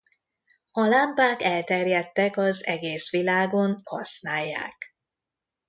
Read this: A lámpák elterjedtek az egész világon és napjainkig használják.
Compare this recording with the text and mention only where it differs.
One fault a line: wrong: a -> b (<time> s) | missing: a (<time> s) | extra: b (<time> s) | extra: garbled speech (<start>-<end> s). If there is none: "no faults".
missing: és napjainkig (3.8 s)